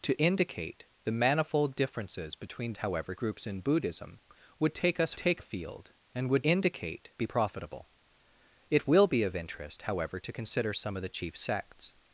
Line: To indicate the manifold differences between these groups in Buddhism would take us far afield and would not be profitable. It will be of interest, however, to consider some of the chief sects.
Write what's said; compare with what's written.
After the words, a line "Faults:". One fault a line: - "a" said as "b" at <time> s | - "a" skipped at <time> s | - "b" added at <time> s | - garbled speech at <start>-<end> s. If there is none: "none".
To indicate the manifold differences between however groups in Buddhism would take us take afield and would indicate be profitable. It will be of interest, however, to consider some of the chief sects.
Faults:
- "these" said as "however" at 2.8 s
- "far" said as "take" at 5.2 s
- "not" said as "indicate" at 6.4 s